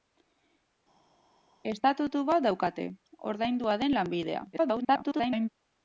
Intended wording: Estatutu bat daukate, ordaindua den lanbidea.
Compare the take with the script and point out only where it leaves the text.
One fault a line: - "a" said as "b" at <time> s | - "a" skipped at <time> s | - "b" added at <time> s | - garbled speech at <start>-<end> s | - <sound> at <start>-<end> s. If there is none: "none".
- garbled speech at 4.5-5.5 s